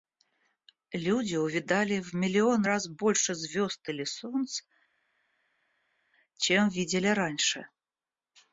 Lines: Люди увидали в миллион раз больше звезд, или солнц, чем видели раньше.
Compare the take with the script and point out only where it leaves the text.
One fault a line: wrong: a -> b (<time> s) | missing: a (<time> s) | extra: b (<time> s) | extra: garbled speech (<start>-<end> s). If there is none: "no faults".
no faults